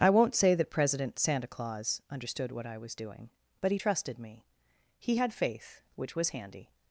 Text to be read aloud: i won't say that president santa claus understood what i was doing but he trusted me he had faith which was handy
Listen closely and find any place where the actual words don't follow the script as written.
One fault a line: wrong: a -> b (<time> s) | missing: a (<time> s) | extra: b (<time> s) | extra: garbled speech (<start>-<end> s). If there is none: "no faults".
no faults